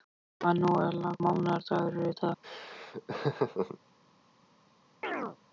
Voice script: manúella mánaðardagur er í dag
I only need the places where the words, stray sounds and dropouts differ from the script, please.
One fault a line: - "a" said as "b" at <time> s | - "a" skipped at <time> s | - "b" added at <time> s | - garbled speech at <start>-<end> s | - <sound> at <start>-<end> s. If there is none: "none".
- laugh at 2.4-3.8 s
- chirp at 5.0-5.4 s